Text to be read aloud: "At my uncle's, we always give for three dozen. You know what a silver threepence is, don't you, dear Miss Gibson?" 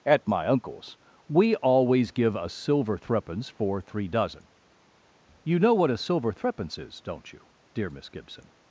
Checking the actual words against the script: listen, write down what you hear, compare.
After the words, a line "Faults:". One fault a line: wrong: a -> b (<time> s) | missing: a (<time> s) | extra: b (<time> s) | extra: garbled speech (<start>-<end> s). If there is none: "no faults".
"At my uncle's, we always give a silver threepence for three dozen. You know what a silver threepence is, don't you, dear Miss Gibson?"
Faults:
extra: a silver threepence (2.4 s)